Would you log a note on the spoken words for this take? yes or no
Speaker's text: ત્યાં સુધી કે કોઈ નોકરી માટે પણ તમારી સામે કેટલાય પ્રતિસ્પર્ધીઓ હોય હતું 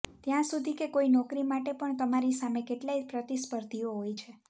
yes